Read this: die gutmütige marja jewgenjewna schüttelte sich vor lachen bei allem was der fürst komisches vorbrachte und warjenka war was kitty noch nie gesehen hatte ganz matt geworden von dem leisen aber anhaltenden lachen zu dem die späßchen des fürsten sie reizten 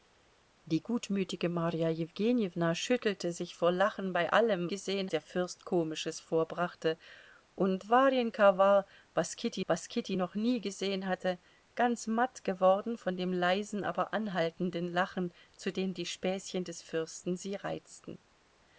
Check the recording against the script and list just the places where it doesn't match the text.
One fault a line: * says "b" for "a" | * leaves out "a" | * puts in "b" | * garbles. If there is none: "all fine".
* says "gesehen" for "was"
* puts in "was kitty"